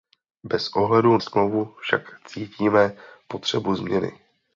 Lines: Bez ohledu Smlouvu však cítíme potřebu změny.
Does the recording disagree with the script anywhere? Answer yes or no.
no